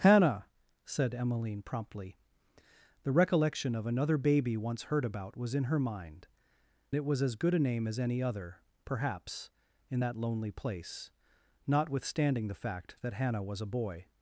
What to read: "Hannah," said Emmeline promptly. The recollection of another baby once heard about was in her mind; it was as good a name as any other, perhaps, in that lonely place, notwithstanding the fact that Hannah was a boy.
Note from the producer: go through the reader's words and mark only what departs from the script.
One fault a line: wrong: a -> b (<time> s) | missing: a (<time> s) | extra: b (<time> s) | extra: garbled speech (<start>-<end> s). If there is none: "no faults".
no faults